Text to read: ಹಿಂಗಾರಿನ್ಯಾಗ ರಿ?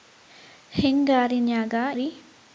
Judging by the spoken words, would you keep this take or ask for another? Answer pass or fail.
pass